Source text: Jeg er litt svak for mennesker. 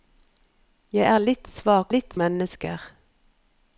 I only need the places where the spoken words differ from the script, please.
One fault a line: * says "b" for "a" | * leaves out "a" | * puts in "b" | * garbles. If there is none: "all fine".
* says "litt" for "for"